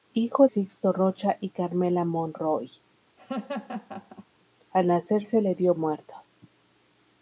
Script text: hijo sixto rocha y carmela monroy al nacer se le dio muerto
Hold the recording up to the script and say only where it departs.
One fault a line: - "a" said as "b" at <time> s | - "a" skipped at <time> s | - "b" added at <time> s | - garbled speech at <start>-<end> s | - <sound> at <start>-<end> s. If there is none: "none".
- laugh at 3.2-4.3 s